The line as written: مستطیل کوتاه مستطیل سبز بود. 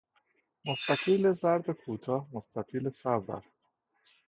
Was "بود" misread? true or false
true